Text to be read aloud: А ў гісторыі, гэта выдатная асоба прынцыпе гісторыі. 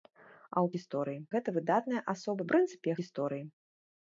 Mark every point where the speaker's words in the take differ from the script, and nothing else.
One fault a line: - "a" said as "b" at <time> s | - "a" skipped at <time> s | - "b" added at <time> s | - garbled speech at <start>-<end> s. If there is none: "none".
none